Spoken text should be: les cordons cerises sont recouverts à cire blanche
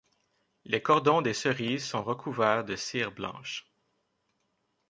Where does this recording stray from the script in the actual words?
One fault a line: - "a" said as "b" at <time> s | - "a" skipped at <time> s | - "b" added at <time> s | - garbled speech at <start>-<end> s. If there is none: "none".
- "des" added at 1.2 s
- "à" said as "de" at 2.6 s